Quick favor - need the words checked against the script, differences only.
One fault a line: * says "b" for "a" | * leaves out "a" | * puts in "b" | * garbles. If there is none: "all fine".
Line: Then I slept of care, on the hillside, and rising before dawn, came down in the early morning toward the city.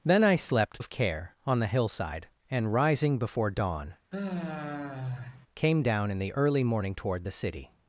all fine